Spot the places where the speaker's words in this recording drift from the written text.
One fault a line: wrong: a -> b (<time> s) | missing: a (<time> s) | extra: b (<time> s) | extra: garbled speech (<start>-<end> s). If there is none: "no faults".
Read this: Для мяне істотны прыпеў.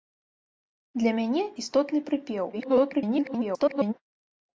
extra: garbled speech (2.5-3.9 s)